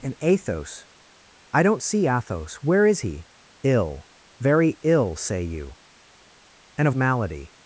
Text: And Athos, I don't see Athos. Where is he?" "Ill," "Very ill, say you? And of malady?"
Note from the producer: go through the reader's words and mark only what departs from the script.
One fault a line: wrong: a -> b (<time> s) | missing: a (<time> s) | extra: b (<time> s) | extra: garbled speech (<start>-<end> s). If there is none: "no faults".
no faults